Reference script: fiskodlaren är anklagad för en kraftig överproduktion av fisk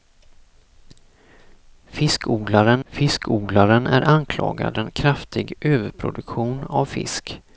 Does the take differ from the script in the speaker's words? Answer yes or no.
yes